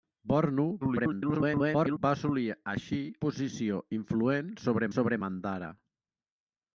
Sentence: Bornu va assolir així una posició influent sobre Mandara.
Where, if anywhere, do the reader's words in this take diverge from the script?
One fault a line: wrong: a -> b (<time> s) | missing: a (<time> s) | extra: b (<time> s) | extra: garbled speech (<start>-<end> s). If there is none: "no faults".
extra: garbled speech (0.8-2.0 s)
missing: una (3.0 s)
extra: sobre (5.0 s)